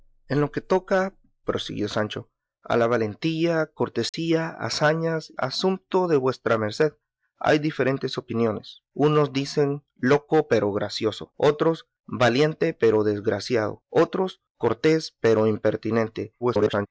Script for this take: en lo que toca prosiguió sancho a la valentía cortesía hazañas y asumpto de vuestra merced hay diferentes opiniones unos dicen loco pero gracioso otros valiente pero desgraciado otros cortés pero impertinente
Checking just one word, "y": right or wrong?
wrong